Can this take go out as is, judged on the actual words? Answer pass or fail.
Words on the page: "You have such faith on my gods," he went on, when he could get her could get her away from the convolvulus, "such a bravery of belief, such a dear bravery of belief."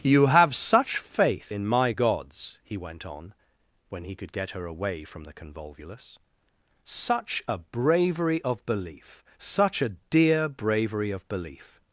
fail